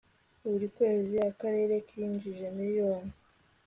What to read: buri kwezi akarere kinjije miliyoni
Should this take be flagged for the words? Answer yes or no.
no